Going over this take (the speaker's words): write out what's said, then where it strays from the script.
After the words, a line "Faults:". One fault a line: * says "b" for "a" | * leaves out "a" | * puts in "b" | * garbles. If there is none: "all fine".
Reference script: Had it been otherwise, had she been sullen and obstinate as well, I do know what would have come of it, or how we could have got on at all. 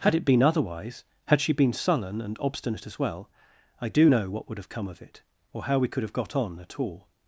Had it been otherwise, had she been sullen and obstinate as well, I do know what would have come of it, or how we could have got on at all.
Faults:
all fine